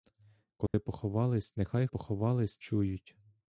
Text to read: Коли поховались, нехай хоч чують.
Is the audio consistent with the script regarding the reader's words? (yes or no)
no